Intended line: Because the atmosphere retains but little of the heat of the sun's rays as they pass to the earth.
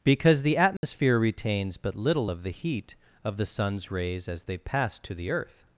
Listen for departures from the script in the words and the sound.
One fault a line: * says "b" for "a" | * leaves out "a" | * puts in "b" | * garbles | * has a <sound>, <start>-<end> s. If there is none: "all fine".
* has a dropout, 0.8-0.8 s